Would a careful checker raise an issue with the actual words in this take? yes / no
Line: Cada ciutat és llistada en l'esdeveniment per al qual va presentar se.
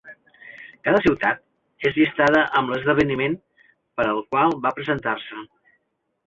yes